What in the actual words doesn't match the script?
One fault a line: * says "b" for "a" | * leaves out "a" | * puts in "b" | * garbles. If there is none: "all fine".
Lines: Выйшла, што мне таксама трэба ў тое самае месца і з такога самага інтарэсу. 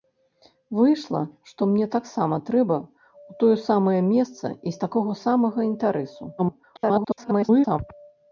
* garbles